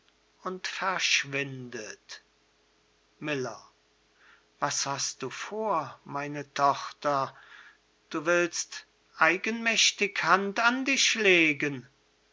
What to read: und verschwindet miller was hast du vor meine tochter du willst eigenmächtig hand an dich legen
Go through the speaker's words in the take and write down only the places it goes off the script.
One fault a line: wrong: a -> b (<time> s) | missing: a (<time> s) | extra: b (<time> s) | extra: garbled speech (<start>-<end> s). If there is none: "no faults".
no faults